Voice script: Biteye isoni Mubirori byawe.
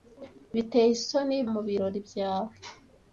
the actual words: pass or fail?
pass